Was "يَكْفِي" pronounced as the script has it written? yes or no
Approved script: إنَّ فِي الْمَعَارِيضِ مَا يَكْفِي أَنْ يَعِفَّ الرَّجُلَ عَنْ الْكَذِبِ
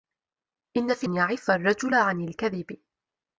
no